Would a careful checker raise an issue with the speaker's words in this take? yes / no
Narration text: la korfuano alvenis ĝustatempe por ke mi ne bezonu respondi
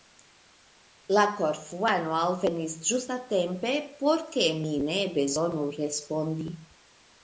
no